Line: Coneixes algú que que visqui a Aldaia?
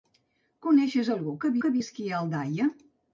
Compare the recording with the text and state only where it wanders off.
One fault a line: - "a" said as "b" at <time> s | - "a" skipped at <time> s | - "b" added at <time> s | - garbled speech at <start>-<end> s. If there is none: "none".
none